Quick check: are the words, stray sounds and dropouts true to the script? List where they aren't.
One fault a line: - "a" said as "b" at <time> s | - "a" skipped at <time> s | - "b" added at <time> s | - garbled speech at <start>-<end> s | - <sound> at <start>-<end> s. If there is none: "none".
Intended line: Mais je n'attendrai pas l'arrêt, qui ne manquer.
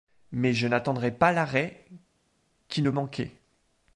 none